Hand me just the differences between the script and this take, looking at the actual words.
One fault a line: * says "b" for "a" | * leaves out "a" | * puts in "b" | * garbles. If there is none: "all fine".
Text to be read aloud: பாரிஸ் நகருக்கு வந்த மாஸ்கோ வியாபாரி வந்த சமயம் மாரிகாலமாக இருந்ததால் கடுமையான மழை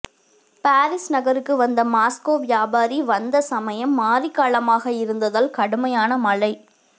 all fine